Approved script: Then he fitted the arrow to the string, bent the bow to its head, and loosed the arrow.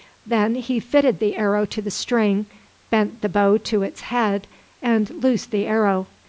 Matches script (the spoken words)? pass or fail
pass